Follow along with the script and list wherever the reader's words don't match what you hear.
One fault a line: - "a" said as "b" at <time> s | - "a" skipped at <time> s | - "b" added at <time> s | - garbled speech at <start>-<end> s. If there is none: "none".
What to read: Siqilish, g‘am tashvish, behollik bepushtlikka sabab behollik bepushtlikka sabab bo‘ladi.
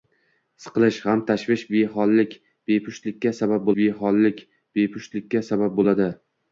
none